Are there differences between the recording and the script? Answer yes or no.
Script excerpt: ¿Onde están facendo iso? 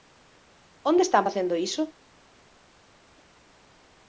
no